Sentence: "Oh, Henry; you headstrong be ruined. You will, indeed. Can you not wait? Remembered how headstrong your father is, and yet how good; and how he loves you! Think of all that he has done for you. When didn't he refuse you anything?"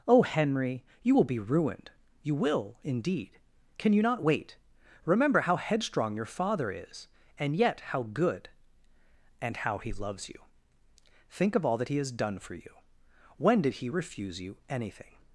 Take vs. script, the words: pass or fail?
fail